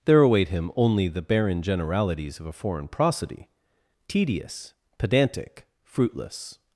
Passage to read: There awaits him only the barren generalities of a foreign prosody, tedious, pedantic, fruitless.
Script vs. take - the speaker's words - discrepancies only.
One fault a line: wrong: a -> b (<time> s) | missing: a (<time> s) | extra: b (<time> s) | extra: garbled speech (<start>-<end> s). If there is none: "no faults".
wrong: awaits -> await (0.2 s)